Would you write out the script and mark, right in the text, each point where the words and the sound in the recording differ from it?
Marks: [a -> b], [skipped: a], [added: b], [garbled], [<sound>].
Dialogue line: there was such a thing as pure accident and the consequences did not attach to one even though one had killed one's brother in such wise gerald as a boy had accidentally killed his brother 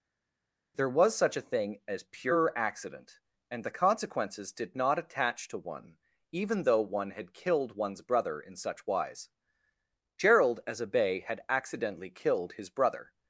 there was such a thing as pure accident and the consequences did not attach to one even though one had killed one's brother in such wise gerald as a [boy -> bay] had accidentally killed his brother